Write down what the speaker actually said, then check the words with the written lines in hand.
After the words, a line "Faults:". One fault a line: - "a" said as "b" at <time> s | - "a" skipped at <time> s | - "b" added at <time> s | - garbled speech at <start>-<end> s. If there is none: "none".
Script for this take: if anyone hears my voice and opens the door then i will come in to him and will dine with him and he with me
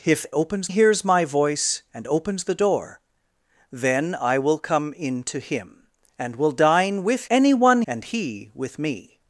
if opens hears my voice and opens the door then i will come in to him and will dine with anyone and he with me
Faults:
- "anyone" said as "opens" at 0.3 s
- "him" said as "anyone" at 7.3 s